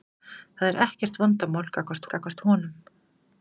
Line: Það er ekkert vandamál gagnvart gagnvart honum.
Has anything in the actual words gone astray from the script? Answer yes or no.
no